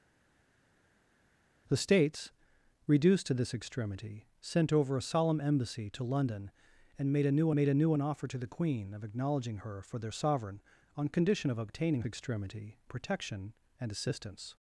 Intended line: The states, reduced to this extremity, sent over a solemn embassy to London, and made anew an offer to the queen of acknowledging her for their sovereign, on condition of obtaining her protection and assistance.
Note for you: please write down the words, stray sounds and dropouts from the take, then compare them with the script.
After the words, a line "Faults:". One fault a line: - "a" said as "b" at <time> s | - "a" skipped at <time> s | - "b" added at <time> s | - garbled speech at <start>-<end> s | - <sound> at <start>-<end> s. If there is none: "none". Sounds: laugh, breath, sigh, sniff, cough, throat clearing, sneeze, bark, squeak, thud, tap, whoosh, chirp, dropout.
The states, reduced to this extremity, sent over a solemn embassy to London, and made anew made anew an offer to the queen of acknowledging her for their sovereign, on condition of obtaining extremity protection and assistance.
Faults:
- "made anew" added at 7.5 s
- "her" said as "extremity" at 12.0 s